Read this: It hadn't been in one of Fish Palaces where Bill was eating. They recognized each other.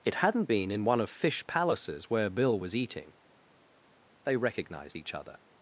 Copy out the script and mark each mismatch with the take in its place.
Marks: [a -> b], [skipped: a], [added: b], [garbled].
It hadn't been in one of Fish Palaces where Bill was eating. They recognized each other.